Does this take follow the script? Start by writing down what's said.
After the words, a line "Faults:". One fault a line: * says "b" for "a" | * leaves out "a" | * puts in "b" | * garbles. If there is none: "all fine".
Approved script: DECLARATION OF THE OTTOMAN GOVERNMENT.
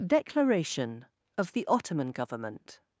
DECLARATION OF THE OTTOMAN GOVERNMENT.
Faults:
all fine